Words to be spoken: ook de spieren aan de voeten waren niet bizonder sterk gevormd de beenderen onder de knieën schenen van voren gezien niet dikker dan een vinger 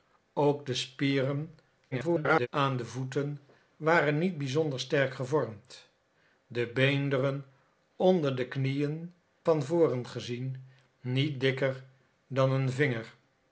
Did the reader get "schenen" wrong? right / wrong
wrong